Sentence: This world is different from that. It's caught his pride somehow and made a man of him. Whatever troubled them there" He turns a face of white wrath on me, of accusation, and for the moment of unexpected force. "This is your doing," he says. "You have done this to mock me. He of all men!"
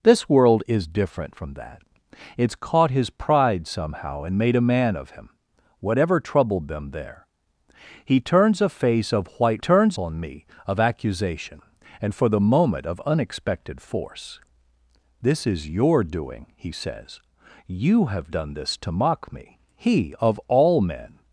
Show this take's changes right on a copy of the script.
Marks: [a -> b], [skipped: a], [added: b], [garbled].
This world is different from that. It's caught his pride somehow and made a man of him. Whatever troubled them there" He turns a face of white [wrath -> turns] on me, of accusation, and for the moment of unexpected force. "This is your doing," he says. "You have done this to mock me. He of all men!"